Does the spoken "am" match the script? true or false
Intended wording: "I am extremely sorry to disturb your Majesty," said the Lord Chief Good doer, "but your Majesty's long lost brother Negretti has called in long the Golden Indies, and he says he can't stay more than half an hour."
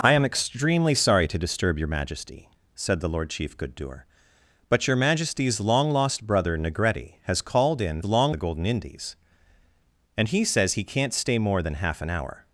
true